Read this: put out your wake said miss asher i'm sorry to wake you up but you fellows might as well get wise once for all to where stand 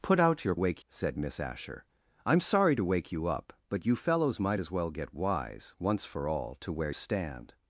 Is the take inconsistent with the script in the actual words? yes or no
no